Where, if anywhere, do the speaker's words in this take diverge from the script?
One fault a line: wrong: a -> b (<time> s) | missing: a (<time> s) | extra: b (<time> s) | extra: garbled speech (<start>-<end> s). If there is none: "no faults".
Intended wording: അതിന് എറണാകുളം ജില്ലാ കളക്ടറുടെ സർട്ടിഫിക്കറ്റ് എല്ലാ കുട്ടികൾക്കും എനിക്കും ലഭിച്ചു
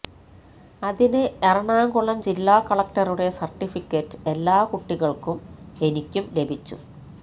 no faults